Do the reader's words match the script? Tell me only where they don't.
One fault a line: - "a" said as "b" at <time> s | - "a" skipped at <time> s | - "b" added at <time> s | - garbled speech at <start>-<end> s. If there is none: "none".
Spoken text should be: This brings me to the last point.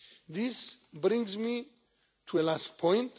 none